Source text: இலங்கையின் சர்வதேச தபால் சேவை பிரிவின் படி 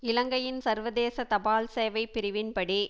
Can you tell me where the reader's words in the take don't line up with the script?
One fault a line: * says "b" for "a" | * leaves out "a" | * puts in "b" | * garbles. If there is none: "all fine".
all fine